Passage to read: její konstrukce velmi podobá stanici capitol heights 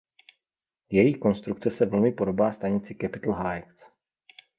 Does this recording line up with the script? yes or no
no